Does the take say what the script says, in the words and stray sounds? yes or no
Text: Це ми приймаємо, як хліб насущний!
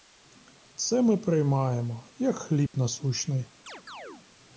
no